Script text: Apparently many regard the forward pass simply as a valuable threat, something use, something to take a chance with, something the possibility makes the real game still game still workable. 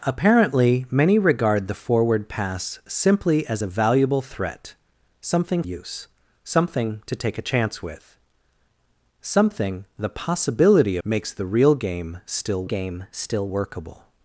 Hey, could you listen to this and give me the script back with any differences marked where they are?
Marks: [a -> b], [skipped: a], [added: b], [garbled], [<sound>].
Apparently many regard the forward pass simply as a valuable threat, something use, something to take a chance with, something the possibility makes the real game still game still workable.